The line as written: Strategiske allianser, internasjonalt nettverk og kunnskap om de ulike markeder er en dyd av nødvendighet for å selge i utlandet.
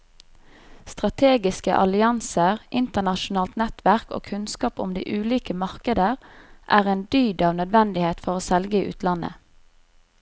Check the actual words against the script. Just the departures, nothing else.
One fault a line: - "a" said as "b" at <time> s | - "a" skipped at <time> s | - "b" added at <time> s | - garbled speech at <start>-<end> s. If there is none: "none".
none